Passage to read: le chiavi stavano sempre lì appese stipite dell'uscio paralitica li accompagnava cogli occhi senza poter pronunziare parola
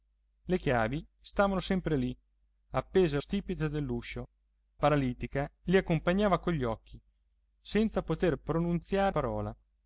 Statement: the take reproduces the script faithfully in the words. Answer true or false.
true